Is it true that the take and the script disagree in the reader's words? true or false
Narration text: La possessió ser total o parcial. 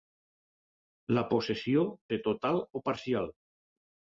false